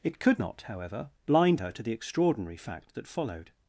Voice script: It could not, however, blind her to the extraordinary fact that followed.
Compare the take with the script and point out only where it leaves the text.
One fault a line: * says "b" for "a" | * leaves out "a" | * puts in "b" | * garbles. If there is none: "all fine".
all fine